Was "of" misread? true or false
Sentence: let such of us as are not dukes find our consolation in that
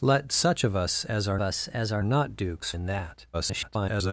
false